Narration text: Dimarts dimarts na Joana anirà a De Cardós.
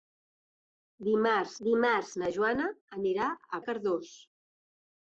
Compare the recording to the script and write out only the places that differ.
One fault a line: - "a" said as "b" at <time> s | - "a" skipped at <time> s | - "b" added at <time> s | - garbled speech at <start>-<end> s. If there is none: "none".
none